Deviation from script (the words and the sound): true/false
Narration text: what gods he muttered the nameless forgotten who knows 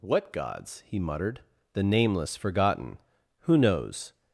false